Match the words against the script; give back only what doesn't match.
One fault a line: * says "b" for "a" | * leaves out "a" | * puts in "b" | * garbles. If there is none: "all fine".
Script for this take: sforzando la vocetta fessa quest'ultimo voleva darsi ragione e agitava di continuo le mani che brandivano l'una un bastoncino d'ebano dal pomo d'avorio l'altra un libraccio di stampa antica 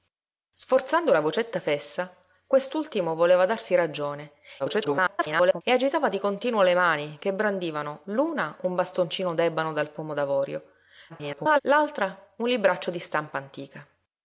* garbles
* garbles